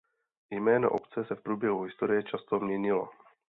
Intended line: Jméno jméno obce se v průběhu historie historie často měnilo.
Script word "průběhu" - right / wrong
right